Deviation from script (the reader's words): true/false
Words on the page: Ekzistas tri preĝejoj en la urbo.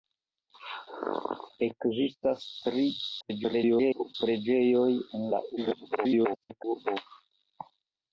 true